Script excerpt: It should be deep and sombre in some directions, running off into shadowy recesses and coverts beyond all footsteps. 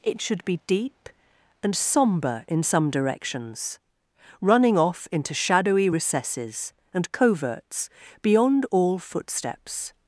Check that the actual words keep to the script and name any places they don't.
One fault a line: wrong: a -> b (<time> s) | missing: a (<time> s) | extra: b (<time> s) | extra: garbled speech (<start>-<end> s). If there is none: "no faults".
no faults